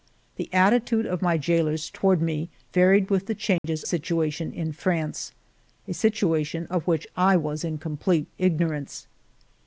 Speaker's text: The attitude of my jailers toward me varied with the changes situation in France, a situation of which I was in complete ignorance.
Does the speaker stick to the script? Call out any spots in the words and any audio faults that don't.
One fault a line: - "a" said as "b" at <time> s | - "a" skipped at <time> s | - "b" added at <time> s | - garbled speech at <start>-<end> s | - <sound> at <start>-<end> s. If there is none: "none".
- dropout at 3.6-3.6 s